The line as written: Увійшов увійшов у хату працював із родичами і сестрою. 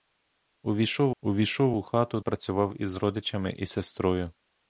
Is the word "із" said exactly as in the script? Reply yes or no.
yes